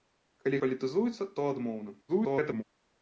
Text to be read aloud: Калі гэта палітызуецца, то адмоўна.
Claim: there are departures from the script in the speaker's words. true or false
true